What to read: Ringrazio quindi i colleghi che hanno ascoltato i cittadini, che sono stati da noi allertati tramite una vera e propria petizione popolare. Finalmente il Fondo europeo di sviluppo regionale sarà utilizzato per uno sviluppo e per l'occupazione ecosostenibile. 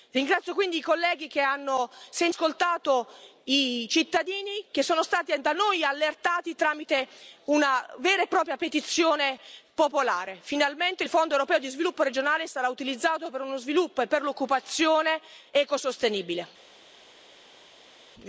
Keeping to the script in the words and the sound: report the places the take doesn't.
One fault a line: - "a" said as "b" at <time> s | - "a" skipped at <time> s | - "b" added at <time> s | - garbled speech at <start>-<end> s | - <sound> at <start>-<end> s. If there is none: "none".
none